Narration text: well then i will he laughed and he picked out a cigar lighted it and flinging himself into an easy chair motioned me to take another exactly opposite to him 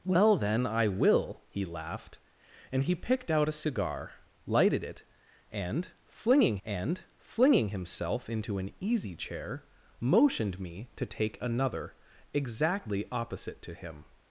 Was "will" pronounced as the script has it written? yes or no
yes